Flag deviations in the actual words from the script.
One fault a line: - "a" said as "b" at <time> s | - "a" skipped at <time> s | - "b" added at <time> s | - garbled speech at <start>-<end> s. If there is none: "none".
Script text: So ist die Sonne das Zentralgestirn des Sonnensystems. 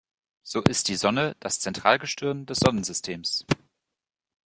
none